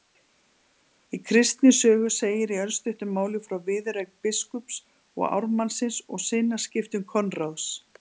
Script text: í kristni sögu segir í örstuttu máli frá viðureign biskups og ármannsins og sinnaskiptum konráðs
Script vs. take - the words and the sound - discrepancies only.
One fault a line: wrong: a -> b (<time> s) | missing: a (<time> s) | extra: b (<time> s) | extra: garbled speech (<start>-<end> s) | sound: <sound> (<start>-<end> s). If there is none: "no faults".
no faults